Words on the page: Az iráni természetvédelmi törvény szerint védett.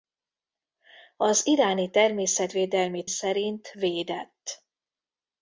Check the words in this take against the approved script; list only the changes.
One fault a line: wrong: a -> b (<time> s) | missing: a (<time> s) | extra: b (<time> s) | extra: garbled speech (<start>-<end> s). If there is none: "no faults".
missing: törvény (3.0 s)